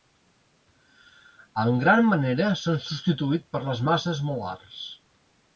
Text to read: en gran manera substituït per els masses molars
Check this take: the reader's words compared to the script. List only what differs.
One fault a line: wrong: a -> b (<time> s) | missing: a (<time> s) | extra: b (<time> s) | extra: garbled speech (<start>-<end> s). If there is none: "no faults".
extra: s'han (2.6 s)
wrong: els -> les (3.7 s)